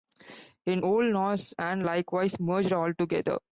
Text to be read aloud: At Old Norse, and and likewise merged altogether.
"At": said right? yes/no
no